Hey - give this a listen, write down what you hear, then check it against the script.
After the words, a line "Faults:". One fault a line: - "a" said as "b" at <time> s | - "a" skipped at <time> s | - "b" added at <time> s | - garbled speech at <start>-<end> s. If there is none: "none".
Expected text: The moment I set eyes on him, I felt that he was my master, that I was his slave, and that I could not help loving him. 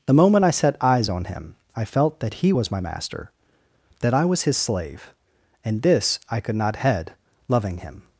The moment I set eyes on him, I felt that he was my master, that I was his slave, and this I could not head loving him.
Faults:
- "that" said as "this" at 5.8 s
- "help" said as "head" at 6.8 s